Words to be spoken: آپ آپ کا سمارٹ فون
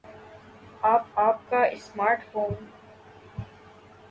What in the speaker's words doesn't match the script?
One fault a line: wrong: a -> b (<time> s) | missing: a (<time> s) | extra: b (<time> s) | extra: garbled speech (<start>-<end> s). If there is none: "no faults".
no faults